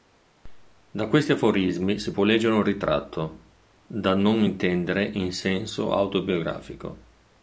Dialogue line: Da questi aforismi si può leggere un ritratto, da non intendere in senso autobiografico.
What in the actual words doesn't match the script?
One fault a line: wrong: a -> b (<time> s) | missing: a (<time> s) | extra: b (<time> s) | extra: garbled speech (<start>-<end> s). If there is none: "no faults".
no faults